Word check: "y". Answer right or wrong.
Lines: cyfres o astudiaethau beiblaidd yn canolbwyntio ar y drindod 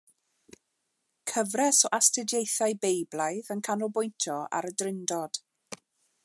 right